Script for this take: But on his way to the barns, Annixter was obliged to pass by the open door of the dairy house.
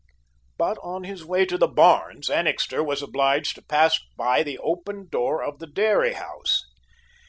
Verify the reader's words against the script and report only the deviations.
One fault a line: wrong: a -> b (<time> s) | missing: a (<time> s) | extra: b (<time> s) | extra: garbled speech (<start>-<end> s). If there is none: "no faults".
no faults